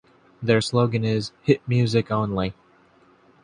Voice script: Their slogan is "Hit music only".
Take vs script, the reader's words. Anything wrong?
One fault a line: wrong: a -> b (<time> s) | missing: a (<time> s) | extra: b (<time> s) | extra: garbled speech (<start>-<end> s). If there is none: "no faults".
no faults